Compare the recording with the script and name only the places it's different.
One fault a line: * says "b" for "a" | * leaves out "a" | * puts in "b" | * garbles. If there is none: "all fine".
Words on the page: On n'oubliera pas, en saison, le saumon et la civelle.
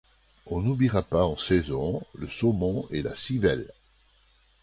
all fine